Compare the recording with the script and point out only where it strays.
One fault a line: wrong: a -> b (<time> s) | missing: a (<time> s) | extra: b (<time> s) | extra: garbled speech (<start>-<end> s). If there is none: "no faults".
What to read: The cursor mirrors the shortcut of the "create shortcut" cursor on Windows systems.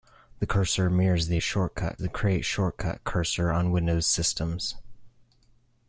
no faults